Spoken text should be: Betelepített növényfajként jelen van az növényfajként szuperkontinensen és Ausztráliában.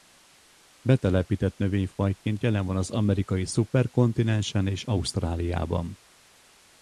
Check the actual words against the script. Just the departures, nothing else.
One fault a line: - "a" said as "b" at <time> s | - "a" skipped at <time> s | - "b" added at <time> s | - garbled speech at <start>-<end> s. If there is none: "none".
- "növényfajként" said as "amerikai" at 2.9 s